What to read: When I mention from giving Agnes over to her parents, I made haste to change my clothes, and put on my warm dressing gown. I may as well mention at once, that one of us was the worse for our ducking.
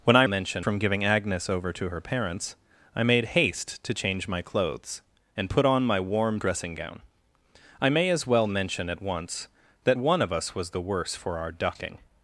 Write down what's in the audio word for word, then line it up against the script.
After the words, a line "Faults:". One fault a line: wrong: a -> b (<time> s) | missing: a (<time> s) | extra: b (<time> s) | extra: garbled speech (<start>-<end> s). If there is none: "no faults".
When I mention from giving Agnes over to her parents, I made haste to change my clothes, and put on my warm dressing gown. I may as well mention at once, that one of us was the worse for our ducking.
Faults:
no faults